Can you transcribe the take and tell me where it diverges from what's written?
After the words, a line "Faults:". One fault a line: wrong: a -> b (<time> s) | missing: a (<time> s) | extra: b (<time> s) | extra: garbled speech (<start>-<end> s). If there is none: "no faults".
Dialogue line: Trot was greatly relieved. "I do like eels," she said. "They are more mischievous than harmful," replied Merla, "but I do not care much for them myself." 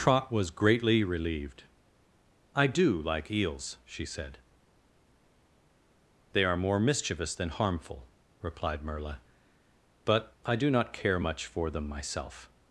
Trot was greatly relieved. "I do like eels," she said. "They are more mischievous than harmful," replied Merla, "but I do not care much for them myself."
Faults:
no faults